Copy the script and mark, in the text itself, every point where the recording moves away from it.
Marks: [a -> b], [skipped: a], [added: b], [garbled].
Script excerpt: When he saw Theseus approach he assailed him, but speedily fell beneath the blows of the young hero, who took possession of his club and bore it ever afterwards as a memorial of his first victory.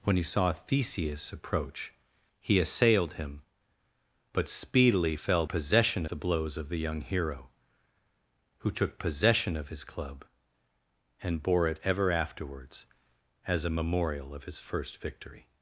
When he saw Theseus approach he assailed him, but speedily fell [beneath -> possession] the blows of the young hero, who took possession of his club and bore it ever afterwards as a memorial of his first victory.